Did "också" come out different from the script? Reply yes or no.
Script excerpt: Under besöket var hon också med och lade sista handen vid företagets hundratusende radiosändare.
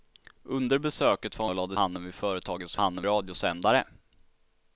yes